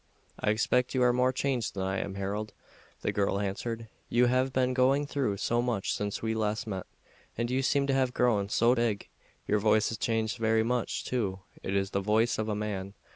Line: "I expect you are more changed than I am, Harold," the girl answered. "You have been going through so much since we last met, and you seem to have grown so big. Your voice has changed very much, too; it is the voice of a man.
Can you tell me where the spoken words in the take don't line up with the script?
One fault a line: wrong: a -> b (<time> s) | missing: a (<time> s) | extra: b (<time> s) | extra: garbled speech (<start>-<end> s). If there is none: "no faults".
no faults